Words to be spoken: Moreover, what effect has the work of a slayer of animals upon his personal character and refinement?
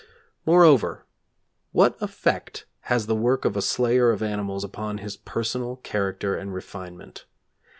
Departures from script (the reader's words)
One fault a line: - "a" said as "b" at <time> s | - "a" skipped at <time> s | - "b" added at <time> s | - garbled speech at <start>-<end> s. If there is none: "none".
none